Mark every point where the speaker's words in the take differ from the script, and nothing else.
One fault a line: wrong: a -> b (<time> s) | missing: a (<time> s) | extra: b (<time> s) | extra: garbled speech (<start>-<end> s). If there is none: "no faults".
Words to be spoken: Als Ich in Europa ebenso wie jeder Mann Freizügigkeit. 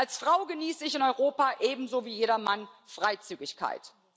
extra: Frau genieße (0.2 s)